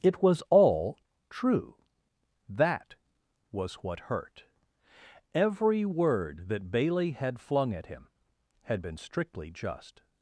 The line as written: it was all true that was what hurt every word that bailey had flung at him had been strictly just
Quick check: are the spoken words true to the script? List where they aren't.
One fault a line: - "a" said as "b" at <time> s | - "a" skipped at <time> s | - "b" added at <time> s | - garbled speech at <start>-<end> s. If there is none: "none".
none